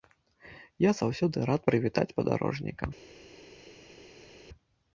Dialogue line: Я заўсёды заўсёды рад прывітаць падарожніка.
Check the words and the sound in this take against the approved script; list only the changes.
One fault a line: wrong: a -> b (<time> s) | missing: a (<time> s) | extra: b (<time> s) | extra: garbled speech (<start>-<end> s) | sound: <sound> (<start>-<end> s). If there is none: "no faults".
missing: заўсёды (1.4 s)